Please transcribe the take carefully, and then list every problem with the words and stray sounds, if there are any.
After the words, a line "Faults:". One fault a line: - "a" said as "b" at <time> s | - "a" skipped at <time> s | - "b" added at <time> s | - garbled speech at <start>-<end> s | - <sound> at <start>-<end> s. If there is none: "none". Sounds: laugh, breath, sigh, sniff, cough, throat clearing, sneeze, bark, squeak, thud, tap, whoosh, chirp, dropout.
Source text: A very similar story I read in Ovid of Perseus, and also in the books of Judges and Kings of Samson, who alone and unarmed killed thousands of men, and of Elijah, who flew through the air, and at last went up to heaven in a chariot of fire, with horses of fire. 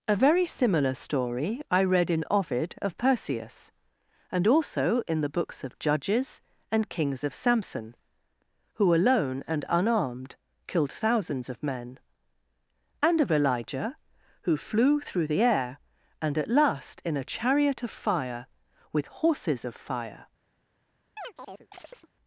A very similar story I read in Ovid of Perseus, and also in the books of Judges and Kings of Samson, who alone and unarmed killed thousands of men, and of Elijah, who flew through the air, and at last in a chariot of fire, with horses of fire.
Faults:
- "went up to heaven" skipped at 17.0 s
- chirp at 21.2-22.1 s